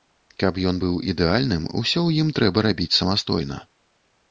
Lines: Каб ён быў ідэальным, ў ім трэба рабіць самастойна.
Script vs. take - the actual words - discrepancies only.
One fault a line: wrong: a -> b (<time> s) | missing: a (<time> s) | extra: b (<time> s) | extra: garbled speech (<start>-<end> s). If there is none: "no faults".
extra: усё (1.8 s)